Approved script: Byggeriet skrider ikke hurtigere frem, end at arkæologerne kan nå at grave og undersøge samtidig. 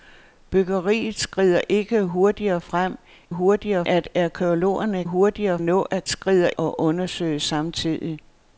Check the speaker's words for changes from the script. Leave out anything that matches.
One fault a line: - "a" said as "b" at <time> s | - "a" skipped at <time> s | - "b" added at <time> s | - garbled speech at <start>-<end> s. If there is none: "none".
- "end" said as "hurtigere" at 3.3 s
- "kan" said as "hurtigere" at 5.0 s
- "grave" said as "skrider" at 6.1 s